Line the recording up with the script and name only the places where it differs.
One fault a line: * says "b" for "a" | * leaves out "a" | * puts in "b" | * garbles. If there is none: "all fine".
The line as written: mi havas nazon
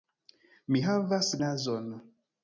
all fine